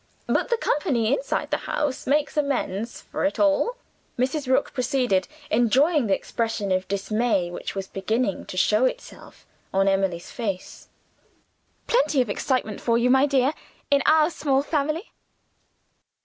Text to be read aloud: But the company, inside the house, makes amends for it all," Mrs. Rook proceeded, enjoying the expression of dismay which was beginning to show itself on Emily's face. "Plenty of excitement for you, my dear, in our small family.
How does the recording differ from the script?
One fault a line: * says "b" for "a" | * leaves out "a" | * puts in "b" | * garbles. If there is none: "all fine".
all fine